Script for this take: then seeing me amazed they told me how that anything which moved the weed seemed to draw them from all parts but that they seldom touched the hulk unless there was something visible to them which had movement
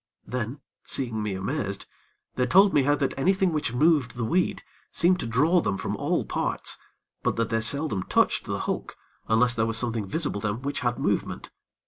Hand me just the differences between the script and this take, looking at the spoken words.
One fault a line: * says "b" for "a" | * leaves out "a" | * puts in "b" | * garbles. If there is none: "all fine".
* leaves out "to"